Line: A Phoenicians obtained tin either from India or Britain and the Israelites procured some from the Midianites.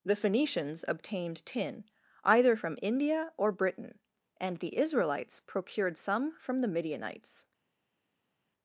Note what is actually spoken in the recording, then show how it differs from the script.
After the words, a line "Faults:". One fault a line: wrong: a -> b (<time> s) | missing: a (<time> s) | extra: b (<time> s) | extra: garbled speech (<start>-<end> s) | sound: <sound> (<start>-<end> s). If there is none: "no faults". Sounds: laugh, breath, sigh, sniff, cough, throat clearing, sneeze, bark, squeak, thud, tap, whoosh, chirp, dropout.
The Phoenicians obtained tin either from India or Britain and the Israelites procured some from the Midianites.
Faults:
wrong: A -> The (0.0 s)